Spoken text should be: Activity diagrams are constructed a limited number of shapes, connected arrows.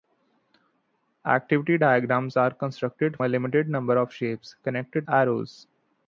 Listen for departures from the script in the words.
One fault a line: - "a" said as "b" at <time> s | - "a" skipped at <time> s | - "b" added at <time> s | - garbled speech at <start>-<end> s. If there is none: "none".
none